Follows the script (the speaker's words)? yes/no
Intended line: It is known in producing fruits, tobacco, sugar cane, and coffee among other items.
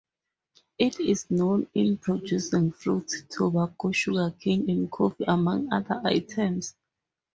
yes